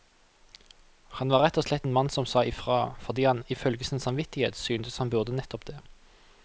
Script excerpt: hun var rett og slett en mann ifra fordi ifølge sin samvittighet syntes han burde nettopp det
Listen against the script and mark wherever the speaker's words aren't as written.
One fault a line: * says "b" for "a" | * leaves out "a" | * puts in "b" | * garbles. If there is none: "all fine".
* says "han" for "hun"
* puts in "som sa"
* puts in "han"